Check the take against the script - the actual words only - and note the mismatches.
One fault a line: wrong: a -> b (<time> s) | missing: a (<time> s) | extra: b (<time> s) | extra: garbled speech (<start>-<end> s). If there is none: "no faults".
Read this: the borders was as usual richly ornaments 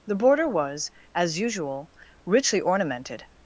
wrong: borders -> border (0.1 s)
wrong: ornaments -> ornamented (2.6 s)